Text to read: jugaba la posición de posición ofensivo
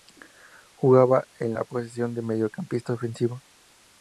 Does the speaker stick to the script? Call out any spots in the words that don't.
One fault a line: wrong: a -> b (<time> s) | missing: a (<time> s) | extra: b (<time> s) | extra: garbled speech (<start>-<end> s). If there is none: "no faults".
extra: en (1.4 s)
wrong: posición -> mediocampista (2.2 s)